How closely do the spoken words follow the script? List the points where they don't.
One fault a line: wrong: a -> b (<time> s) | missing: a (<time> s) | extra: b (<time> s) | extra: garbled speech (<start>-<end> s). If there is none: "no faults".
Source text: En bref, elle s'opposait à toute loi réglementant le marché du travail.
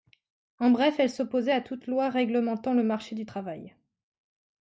no faults